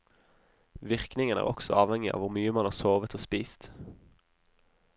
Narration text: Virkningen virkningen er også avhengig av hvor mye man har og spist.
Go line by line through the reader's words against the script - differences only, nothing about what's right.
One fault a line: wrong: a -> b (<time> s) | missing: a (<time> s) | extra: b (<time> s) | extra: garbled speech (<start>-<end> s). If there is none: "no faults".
missing: virkningen (1.4 s)
extra: sovet (2.8 s)